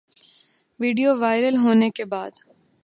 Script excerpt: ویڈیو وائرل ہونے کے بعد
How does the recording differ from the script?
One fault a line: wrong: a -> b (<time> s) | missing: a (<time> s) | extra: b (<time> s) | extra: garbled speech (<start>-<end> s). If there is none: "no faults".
no faults